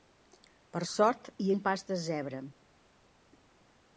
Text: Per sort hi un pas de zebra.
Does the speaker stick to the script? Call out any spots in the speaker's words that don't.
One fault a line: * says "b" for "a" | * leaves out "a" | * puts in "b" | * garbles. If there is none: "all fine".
all fine